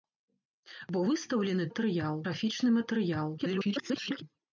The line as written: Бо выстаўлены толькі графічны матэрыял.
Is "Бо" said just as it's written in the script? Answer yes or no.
yes